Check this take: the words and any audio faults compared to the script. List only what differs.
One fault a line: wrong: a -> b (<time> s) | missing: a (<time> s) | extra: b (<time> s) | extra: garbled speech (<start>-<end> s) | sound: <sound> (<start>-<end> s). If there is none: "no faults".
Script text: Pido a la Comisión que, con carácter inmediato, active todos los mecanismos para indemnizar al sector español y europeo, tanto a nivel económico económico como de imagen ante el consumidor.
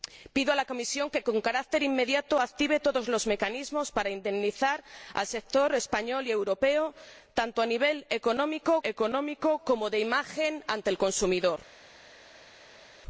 no faults